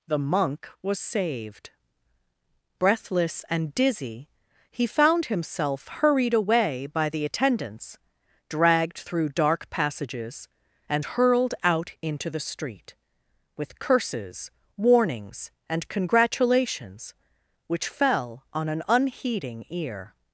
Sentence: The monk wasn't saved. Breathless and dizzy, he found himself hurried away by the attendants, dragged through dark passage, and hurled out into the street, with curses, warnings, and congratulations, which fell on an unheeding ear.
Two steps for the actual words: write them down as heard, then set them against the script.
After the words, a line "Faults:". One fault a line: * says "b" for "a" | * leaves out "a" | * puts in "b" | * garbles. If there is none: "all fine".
The monk was saved. Breathless and dizzy, he found himself hurried away by the attendants, dragged through dark passages, and hurled out into the street, with curses, warnings, and congratulations, which fell on an unheeding ear.
Faults:
* says "was" for "wasn't"
* says "passages" for "passage"